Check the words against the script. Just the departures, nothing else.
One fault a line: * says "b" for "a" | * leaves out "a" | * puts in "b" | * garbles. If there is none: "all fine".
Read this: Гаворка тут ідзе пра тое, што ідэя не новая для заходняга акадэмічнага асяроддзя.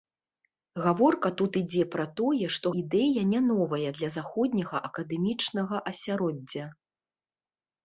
all fine